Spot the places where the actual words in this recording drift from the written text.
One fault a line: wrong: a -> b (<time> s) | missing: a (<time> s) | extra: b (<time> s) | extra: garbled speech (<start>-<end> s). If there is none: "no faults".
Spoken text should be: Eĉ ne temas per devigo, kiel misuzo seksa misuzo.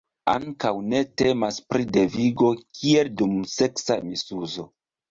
wrong: Eĉ -> Ankaŭ (0.3 s)
wrong: per -> pri (1.7 s)
wrong: misuzo -> dum (3.2 s)